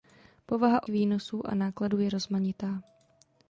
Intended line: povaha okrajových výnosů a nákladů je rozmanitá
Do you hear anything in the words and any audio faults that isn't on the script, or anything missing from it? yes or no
yes